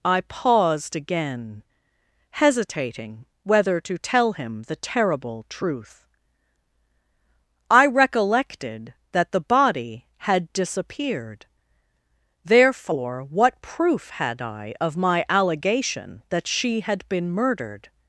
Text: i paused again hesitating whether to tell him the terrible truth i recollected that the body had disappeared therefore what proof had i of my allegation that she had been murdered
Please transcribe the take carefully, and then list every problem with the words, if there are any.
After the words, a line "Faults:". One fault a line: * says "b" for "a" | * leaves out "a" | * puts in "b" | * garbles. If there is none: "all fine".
i paused again hesitating whether to tell him the terrible truth i recollected that the body had disappeared therefore what proof had i of my allegation that she had been murdered
Faults:
all fine